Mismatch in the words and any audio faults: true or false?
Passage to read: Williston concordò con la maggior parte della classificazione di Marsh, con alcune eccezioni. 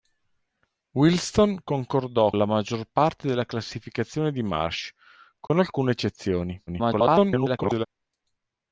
true